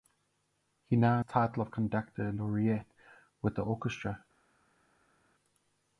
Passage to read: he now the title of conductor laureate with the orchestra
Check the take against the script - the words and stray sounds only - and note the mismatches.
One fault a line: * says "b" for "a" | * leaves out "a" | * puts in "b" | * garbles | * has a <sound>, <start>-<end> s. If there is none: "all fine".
all fine